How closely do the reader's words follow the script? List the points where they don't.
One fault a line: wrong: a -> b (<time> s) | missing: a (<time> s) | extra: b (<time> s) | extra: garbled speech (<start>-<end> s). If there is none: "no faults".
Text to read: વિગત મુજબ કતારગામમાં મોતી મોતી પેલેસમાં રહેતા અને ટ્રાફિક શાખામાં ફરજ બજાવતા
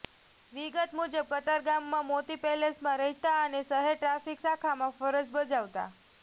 missing: મોતી (2.4 s)
extra: શહેર (3.6 s)